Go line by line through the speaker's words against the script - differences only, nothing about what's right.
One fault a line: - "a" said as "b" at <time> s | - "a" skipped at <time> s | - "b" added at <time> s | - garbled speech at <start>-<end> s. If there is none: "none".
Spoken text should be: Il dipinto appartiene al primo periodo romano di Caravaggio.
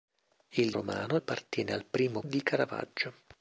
- "dipinto" said as "romano" at 0.7 s
- "periodo romano" skipped at 2.2 s